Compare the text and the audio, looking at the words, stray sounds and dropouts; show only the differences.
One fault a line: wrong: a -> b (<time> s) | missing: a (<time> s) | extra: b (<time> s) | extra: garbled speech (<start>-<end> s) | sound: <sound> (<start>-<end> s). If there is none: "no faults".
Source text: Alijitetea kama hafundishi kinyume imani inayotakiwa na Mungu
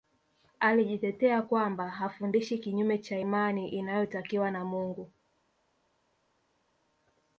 wrong: kama -> kwamba (1.4 s)
extra: cha (3.0 s)